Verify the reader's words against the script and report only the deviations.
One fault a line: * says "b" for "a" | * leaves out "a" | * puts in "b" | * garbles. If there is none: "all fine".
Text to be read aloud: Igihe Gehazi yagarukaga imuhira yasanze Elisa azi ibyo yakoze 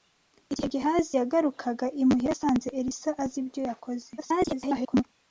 * garbles